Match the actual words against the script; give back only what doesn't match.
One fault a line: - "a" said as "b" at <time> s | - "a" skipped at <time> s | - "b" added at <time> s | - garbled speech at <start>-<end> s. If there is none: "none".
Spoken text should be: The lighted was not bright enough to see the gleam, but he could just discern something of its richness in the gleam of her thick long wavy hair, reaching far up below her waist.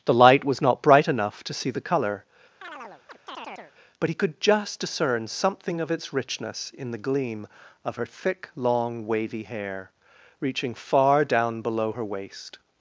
- "lighted" said as "light" at 0.1 s
- "gleam" said as "colour" at 1.8 s
- "up" said as "down" at 11.2 s